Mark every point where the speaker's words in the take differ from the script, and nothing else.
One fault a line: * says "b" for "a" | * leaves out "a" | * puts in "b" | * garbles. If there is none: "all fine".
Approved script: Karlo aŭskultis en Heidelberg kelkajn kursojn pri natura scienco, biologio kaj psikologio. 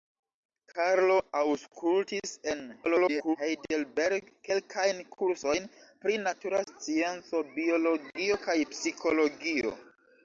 * garbles